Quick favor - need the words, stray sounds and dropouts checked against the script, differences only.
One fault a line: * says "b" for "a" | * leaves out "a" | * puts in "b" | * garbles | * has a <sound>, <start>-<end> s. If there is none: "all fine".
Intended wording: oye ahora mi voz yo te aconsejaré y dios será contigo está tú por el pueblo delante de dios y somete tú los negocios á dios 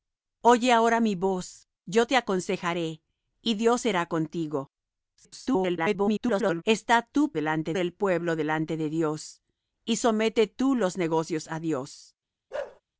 * garbles
* says "delante" for "por"
* has a bark, 12.5-12.8 s